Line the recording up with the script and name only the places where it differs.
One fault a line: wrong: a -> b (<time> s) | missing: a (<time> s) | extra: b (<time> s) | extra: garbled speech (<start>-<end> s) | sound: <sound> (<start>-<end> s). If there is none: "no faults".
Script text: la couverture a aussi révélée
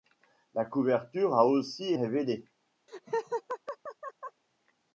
sound: laugh (2.9-4.4 s)